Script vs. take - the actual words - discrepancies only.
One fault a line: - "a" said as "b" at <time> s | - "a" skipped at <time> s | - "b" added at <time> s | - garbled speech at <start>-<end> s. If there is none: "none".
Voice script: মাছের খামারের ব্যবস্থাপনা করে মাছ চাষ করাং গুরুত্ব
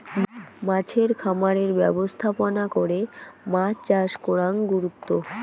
none